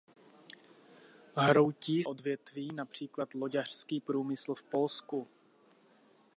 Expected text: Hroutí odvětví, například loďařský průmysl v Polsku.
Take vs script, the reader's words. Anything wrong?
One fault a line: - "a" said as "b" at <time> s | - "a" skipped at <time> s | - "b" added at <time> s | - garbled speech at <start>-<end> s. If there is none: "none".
none